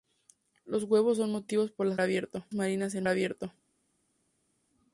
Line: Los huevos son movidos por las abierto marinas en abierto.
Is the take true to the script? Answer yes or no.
yes